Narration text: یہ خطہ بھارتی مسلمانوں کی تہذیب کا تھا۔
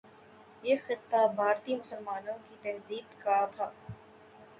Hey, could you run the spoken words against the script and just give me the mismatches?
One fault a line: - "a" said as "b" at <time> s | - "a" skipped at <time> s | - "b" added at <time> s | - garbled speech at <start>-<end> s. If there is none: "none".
none